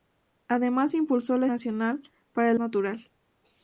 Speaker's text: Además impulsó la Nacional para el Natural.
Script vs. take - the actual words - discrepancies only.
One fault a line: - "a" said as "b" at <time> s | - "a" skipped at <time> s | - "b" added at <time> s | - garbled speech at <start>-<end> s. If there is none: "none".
none